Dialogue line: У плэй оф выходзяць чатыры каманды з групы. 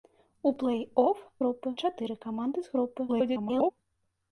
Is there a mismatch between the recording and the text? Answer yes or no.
yes